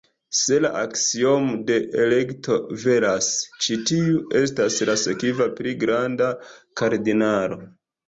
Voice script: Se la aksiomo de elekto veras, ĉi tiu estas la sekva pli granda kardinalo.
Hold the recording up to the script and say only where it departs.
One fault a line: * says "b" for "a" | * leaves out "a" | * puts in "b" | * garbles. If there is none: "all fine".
all fine